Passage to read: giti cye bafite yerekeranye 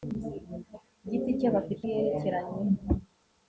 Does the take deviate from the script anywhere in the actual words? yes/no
no